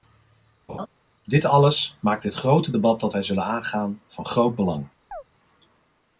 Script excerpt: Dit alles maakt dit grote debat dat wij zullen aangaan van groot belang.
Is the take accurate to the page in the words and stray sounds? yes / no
no